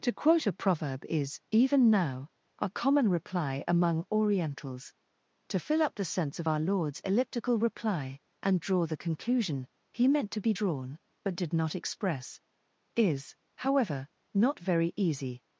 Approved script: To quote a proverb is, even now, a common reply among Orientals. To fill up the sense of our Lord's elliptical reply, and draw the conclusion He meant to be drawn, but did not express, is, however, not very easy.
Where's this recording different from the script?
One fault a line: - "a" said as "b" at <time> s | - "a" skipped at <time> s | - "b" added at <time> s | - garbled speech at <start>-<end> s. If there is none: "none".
none